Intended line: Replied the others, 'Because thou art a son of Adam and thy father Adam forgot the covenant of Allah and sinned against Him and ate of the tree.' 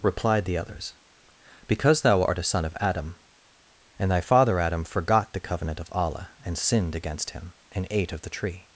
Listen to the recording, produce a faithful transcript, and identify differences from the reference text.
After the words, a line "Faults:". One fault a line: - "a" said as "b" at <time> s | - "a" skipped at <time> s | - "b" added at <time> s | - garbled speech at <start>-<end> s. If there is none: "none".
Replied the others, 'Because thou art a son of Adam and thy father Adam forgot the covenant of Allah and sinned against Him and ate of the tree.'
Faults:
none